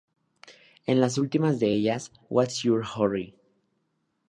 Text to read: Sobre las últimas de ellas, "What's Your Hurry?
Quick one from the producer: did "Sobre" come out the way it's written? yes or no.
no